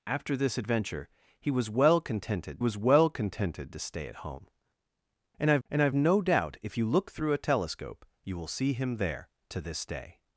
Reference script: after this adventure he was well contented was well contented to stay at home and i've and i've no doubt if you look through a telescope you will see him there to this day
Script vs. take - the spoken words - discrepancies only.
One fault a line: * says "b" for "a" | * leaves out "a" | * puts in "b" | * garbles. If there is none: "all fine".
all fine